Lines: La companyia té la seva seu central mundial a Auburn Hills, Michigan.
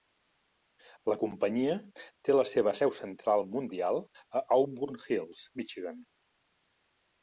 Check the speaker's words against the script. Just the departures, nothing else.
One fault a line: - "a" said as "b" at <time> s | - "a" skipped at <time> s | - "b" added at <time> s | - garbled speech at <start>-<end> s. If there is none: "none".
none